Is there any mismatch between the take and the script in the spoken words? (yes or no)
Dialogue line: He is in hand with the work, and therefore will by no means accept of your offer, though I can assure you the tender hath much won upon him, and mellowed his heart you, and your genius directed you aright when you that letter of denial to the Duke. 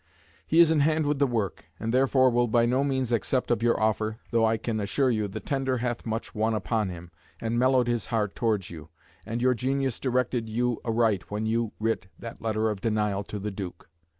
yes